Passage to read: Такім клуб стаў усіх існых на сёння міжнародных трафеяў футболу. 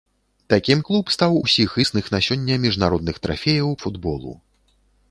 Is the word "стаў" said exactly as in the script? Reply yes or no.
yes